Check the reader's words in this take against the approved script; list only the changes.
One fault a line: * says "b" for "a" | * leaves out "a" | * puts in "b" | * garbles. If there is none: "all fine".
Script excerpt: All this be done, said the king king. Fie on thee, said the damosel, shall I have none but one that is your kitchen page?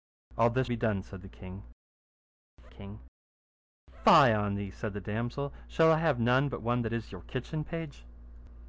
all fine